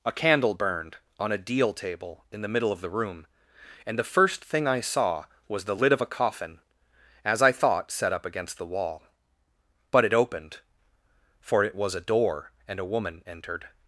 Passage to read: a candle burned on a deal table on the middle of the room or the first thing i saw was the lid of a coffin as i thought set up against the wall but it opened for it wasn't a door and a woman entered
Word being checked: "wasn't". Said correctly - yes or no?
no